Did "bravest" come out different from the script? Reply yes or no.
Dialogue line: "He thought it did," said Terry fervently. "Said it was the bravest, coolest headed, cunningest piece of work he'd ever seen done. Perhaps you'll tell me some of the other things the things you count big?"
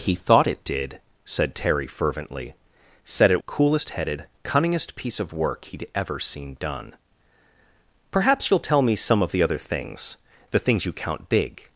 yes